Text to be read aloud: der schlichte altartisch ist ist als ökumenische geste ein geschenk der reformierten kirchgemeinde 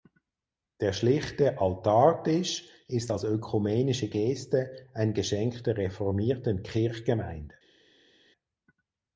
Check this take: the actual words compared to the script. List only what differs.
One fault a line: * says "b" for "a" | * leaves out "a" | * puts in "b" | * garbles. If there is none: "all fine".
* leaves out "ist"